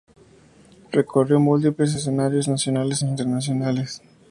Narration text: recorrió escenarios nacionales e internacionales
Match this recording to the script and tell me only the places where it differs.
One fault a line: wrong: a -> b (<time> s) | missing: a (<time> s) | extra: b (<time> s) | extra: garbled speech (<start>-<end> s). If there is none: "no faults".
extra: múltiples (1.4 s)